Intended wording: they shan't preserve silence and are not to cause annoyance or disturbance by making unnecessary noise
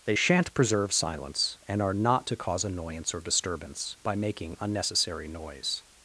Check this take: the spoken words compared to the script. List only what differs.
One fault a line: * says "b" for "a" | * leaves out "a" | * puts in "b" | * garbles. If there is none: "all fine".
all fine